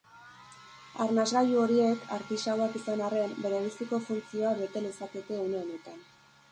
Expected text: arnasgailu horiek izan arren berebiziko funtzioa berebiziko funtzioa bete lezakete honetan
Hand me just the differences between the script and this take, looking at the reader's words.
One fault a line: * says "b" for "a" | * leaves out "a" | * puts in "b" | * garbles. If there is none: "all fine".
* puts in "artisauak"
* leaves out "berebiziko funtzioa"
* puts in "une"